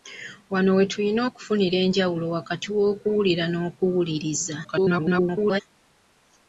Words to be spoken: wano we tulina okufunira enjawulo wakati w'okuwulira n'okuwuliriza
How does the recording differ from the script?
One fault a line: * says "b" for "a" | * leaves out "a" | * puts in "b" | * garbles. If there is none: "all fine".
* garbles